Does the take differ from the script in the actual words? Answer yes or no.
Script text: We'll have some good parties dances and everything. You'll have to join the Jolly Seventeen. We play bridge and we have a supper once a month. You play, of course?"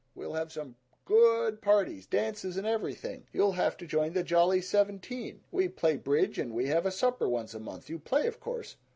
no